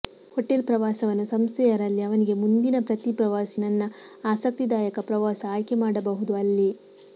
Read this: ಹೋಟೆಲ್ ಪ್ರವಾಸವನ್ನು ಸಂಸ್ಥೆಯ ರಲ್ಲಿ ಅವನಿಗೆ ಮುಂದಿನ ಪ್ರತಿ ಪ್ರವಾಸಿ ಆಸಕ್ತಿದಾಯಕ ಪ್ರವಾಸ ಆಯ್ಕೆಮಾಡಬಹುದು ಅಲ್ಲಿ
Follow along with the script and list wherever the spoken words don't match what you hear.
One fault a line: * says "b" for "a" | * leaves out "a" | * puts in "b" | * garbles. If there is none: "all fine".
* puts in "ನನ್ನ"